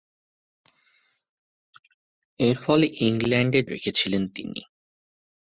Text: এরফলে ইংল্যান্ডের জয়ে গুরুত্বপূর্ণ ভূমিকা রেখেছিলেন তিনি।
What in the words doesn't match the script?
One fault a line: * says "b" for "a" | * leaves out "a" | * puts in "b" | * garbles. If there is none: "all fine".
* leaves out "জয়ে গুরুত্বপূর্ণ ভূমিকা"